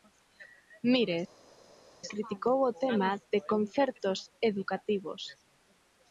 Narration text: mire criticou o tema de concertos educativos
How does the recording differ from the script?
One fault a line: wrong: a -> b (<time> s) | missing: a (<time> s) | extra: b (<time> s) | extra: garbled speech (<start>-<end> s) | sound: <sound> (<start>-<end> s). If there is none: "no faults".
no faults